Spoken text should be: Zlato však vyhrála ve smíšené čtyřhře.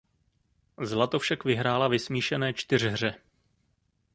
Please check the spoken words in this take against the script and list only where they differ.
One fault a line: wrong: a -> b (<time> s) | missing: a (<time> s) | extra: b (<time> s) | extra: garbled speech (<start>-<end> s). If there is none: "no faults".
no faults